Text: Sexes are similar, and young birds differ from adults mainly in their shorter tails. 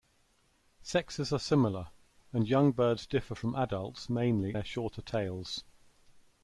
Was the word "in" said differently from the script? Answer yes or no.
yes